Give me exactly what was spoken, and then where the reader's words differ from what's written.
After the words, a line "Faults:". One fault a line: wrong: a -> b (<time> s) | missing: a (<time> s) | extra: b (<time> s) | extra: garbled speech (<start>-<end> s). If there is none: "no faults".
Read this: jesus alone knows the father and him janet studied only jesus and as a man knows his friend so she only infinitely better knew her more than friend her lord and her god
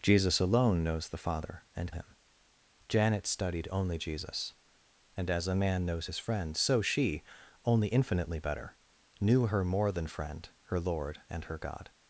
jesus alone knows the father and him janet studied only jesus and as a man knows his friend so she only infinitely better knew her more than friend her lord and her god
Faults:
no faults